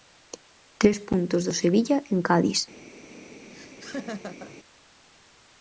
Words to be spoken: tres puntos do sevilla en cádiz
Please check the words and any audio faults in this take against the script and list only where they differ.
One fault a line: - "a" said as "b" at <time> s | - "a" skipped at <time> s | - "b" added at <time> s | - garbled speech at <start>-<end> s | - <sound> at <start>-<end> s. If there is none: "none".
- laugh at 3.5-4.6 s